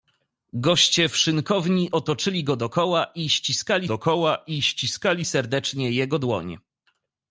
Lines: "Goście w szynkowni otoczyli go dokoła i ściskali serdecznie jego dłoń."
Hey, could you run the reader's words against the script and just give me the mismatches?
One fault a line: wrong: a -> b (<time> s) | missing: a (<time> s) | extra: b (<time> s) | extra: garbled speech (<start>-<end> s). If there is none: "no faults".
extra: dokoła i ściskali (3.8 s)